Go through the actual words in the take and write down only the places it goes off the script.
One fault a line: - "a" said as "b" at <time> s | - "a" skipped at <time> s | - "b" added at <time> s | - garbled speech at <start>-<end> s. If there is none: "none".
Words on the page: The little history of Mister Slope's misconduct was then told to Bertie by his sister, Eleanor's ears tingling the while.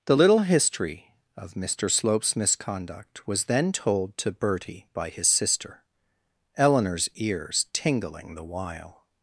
none